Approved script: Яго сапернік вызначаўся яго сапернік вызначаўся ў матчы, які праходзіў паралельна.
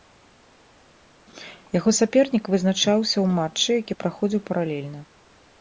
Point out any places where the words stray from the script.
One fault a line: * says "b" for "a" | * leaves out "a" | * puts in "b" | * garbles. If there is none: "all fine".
* leaves out "яго сапернік вызначаўся"